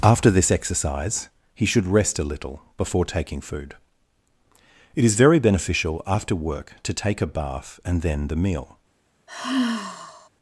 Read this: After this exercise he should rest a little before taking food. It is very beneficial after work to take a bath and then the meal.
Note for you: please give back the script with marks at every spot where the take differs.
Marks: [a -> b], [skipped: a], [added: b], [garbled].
After this exercise he should rest a little before taking food. It is very beneficial after work to take a bath and then the meal.